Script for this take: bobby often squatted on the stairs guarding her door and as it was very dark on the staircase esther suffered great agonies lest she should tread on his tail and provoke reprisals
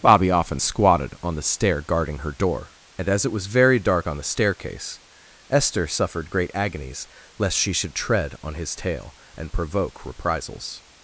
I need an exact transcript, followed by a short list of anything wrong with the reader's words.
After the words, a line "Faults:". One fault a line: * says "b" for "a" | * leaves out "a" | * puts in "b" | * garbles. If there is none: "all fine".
bobby often squatted on the stair guarding her door and as it was very dark on the staircase esther suffered great agonies lest she should tread on his tail and provoke reprisals
Faults:
* says "stair" for "stairs"